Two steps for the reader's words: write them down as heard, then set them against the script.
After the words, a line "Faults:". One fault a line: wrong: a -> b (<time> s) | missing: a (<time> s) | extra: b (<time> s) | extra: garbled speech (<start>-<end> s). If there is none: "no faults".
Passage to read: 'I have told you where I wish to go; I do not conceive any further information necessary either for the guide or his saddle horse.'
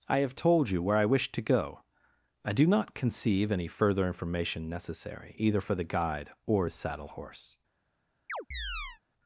'I have told you where I wish to go; I do not conceive any further information necessary either for the guide or his saddle horse.'
Faults:
no faults